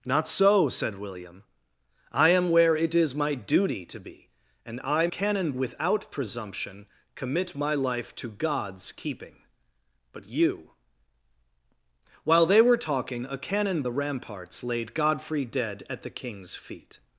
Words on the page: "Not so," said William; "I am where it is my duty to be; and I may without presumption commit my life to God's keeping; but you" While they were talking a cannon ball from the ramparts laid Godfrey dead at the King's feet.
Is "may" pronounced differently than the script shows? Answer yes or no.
yes